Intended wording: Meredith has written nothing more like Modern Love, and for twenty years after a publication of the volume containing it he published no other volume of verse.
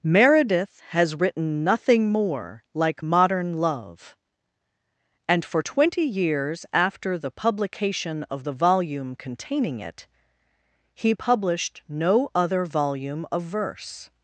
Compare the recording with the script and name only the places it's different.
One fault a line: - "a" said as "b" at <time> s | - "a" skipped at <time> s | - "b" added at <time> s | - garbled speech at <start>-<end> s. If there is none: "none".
- "a" said as "the" at 7.2 s